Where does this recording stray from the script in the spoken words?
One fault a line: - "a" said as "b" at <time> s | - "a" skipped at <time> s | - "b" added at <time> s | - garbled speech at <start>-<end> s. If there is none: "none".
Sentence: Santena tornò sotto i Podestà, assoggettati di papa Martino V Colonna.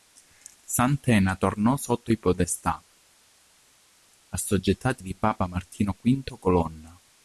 none